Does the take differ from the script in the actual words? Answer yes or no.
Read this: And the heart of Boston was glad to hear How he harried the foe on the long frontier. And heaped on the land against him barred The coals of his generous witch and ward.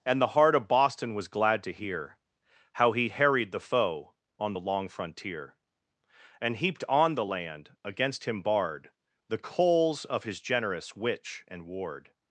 no